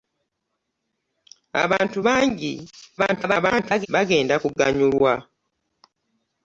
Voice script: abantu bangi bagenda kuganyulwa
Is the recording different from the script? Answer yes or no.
yes